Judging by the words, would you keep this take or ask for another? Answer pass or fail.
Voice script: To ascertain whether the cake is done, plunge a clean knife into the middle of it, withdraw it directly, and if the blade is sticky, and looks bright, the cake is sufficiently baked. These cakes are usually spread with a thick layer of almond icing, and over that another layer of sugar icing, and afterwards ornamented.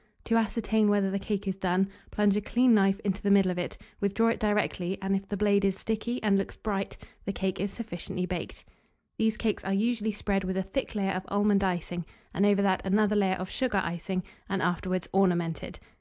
pass